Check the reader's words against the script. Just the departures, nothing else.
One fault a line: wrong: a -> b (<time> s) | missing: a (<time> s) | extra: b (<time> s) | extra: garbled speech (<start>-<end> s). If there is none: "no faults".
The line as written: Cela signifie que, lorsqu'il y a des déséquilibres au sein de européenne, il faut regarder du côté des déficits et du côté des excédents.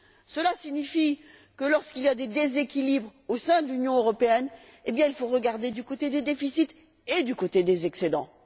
extra: l'Union (3.7 s)